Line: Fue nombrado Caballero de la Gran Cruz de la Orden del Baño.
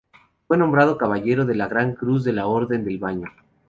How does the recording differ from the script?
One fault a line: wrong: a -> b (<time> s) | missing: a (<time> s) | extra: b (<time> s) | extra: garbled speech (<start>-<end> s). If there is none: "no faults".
no faults